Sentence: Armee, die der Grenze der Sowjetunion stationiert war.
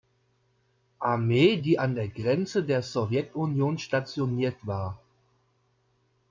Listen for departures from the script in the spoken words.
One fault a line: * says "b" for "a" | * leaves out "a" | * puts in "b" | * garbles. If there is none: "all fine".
* puts in "an"